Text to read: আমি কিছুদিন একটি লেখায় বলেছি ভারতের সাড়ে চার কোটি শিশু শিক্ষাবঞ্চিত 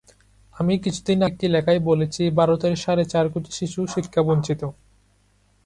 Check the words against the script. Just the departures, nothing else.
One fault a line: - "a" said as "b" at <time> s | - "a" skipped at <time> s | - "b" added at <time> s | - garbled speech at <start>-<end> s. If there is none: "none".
none